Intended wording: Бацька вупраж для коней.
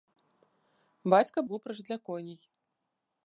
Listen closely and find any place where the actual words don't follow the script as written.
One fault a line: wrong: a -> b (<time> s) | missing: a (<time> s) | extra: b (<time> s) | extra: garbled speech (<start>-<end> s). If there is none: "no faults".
no faults